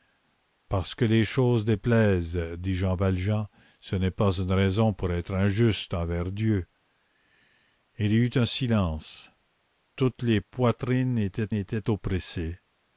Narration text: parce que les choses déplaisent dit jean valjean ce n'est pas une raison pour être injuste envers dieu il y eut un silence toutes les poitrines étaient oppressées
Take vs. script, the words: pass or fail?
fail